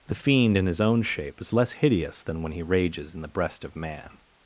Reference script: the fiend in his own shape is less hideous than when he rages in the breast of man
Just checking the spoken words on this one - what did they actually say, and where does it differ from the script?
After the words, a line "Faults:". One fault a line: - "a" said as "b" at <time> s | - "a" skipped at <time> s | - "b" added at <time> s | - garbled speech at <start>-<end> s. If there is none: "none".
the fiend in his own shape is less hideous than when he rages in the breast of man
Faults:
none